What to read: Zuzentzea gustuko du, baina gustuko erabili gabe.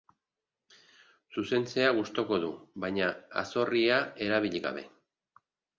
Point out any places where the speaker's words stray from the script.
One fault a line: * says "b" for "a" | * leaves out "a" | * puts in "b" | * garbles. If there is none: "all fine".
* says "azorria" for "gustuko"